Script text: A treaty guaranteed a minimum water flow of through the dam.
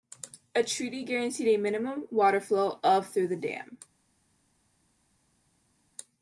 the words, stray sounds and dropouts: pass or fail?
pass